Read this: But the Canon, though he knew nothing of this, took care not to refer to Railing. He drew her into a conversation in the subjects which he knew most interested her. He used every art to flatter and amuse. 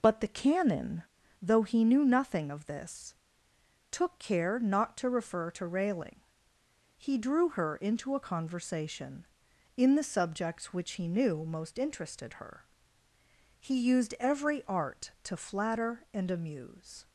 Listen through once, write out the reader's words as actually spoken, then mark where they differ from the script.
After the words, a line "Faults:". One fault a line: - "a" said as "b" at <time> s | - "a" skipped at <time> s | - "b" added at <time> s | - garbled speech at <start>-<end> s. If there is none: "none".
But the Canon, though he knew nothing of this, took care not to refer to Railing. He drew her into a conversation in the subjects which he knew most interested her. He used every art to flatter and amuse.
Faults:
none